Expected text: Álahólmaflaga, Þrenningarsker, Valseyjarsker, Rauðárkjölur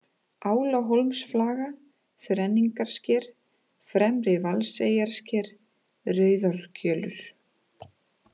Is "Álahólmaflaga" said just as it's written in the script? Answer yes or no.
yes